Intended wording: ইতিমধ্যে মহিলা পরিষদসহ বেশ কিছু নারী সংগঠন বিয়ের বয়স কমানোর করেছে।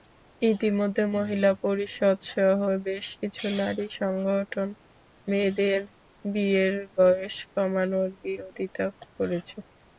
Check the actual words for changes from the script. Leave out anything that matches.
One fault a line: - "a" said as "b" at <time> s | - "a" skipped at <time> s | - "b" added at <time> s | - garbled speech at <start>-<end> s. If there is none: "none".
- "মেয়েদের" added at 5.3 s
- "বিরোধিতা" added at 8.2 s